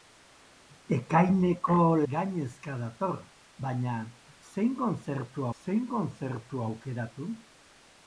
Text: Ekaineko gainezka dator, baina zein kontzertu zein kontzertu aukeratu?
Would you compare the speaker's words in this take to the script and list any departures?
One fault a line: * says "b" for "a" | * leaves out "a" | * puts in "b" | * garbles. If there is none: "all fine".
all fine